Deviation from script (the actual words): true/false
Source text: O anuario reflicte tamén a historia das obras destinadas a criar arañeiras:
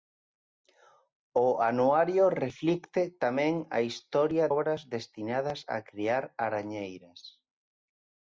true